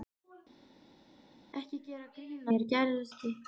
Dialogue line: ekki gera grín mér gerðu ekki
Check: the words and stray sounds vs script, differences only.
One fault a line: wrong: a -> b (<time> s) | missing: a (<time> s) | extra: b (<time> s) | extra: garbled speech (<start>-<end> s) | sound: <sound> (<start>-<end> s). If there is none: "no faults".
no faults